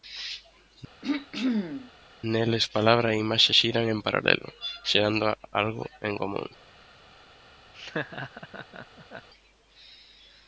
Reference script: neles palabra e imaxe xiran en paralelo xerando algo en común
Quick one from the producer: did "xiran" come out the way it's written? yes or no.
yes